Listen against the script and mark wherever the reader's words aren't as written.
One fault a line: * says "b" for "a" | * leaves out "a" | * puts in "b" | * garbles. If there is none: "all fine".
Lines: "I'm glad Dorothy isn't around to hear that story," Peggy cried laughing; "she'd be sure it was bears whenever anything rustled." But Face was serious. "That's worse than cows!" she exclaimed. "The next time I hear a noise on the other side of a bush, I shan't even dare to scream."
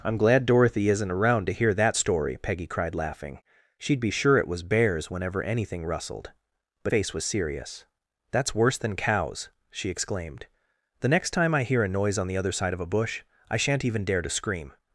all fine